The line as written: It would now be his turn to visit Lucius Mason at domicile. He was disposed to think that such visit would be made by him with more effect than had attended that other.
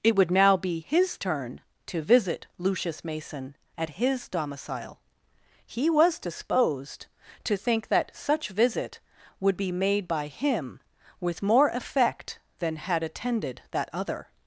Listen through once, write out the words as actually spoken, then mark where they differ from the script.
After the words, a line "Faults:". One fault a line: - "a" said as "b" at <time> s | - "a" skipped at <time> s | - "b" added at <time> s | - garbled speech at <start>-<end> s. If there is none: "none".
It would now be his turn to visit Lucius Mason at his domicile. He was disposed to think that such visit would be made by him with more effect than had attended that other.
Faults:
- "his" added at 4.0 s